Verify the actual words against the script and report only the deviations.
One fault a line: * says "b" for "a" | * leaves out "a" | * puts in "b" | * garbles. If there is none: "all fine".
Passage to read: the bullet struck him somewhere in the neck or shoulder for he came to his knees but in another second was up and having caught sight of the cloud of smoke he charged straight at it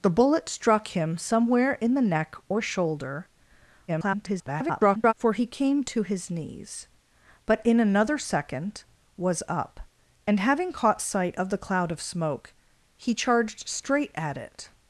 * garbles